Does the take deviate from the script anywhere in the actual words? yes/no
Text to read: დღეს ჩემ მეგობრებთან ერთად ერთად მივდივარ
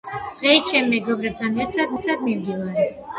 no